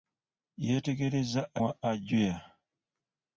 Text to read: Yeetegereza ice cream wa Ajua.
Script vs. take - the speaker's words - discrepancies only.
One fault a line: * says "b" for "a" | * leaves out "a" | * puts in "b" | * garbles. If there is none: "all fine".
* leaves out "ice cream"